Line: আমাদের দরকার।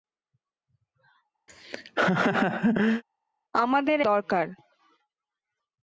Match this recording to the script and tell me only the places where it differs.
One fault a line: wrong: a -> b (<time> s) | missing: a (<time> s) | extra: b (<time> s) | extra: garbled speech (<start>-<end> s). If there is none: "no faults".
no faults